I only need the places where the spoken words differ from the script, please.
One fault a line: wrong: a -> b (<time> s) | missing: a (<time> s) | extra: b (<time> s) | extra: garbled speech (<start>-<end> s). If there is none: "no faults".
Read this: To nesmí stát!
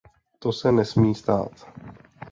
extra: se (0.5 s)